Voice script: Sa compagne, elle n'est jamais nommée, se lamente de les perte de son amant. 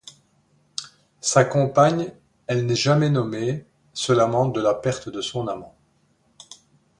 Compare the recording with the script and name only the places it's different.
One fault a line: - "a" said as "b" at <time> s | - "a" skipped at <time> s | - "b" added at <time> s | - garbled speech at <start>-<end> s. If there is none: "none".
- "les" said as "la" at 4.6 s